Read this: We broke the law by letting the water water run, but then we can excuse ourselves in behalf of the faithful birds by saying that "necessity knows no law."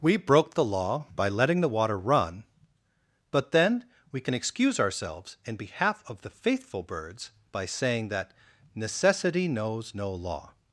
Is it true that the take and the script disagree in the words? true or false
true